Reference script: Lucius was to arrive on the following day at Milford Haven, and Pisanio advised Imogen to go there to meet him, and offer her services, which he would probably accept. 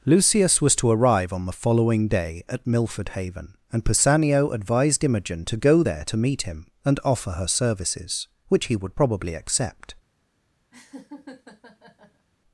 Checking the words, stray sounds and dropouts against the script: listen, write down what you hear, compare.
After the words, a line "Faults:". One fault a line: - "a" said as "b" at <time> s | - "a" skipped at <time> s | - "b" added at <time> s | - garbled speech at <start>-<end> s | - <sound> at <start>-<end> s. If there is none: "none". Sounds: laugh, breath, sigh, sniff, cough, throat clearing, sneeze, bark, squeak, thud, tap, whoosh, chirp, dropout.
Lucius was to arrive on the following day at Milford Haven, and Pisanio advised Imogen to go there to meet him, and offer her services, which he would probably accept.
Faults:
- laugh at 10.7-12.3 s